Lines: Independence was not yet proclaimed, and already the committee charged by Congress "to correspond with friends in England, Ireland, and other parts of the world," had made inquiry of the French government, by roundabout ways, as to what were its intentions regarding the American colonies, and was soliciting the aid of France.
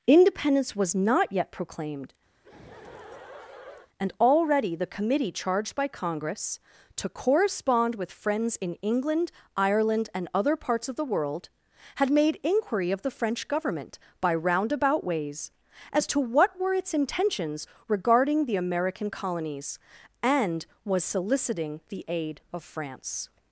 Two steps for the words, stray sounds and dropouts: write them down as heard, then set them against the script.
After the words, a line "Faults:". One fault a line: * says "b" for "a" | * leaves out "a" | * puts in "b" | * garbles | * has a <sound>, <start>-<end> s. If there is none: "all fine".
Independence was not yet proclaimed, and already the committee charged by Congress "to correspond with friends in England, Ireland, and other parts of the world," had made inquiry of the French government, by roundabout ways, as to what were its intentions regarding the American colonies, and was soliciting the aid of France.
Faults:
* has a laugh, 2.3-3.9 s